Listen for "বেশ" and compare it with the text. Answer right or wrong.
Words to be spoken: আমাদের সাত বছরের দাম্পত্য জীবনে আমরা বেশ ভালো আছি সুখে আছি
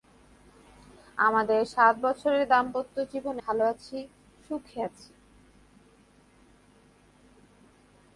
wrong